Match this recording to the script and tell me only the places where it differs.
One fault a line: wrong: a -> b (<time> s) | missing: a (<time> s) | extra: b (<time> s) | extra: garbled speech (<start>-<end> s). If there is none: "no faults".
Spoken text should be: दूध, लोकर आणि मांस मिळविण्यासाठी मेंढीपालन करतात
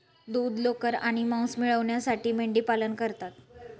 no faults